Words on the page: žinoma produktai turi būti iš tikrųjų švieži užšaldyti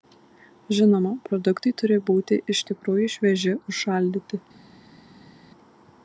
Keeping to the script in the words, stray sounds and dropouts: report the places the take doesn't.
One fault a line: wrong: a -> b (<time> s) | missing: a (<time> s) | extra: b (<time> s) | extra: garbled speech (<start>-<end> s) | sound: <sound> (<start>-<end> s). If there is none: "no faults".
no faults